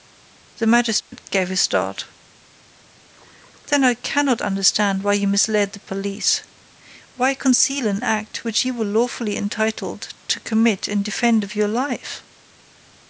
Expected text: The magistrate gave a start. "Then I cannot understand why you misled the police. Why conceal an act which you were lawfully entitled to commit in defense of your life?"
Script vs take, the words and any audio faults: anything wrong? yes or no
yes